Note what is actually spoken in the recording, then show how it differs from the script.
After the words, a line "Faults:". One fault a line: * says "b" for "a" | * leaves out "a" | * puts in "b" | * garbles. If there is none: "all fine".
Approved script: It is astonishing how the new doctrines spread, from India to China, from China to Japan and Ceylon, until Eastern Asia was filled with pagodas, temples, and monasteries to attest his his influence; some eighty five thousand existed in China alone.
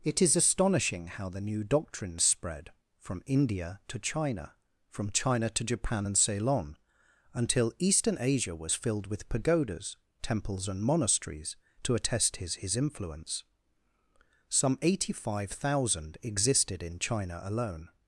It is astonishing how the new doctrines spread, from India to China, from China to Japan and Ceylon, until Eastern Asia was filled with pagodas, temples, and monasteries to attest his his influence; some eighty five thousand existed in China alone.
Faults:
all fine